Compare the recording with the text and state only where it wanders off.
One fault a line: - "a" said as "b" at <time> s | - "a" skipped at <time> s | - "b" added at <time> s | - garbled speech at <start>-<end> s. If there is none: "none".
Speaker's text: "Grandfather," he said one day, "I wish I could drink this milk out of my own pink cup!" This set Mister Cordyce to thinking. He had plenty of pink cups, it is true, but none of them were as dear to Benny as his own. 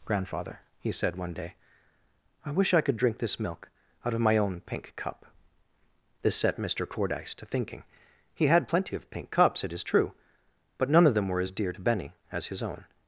none